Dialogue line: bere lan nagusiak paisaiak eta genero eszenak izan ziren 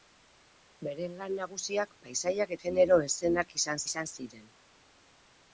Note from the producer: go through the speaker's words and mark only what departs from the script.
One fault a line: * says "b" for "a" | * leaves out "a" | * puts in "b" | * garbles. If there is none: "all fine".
* leaves out "eta"
* puts in "izan"